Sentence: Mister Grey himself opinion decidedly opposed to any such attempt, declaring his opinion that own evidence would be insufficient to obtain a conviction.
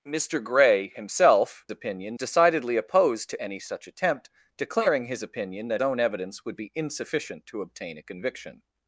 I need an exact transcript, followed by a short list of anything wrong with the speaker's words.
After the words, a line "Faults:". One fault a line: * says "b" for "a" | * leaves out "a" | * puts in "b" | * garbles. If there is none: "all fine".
Mister Grey himself opinion decidedly opposed to any such attempt, declaring his opinion that own evidence would be insufficient to obtain a conviction.
Faults:
all fine